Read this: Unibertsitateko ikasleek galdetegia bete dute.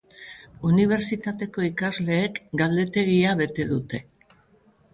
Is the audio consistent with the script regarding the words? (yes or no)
yes